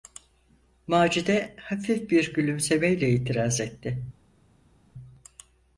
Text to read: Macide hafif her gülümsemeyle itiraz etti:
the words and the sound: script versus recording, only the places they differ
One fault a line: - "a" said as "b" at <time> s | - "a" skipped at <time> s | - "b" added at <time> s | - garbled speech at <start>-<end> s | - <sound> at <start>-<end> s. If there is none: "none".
- "her" said as "bir" at 2.1 s